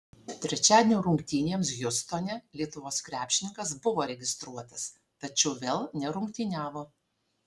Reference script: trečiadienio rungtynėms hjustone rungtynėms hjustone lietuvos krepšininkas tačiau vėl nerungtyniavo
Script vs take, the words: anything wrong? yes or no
yes